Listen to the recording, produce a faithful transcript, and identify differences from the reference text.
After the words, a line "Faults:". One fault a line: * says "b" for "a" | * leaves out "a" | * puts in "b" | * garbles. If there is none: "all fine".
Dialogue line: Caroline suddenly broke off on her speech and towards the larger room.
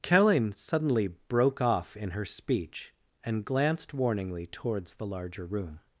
Caroline suddenly broke off in her speech and glanced warningly towards the larger room.
Faults:
* says "in" for "on"
* puts in "glanced warningly"